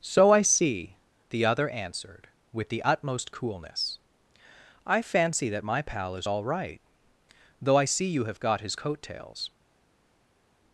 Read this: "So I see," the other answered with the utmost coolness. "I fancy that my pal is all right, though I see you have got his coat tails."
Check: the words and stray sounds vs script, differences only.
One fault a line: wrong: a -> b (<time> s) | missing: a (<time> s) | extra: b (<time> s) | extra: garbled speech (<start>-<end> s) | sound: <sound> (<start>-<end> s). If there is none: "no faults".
no faults